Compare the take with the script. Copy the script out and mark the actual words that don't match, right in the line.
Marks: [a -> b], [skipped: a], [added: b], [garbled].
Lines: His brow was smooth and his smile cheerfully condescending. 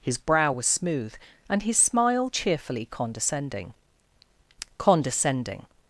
His brow was smooth and his smile cheerfully condescending. [added: condescending]